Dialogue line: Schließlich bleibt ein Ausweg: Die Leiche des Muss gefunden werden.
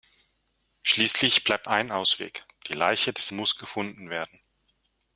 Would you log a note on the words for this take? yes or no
no